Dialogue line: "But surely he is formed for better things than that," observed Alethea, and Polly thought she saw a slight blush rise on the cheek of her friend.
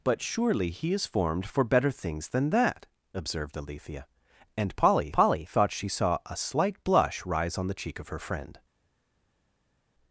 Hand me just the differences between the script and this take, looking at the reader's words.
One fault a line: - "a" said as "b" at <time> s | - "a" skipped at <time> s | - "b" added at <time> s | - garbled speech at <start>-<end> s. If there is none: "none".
- "Polly" added at 5.1 s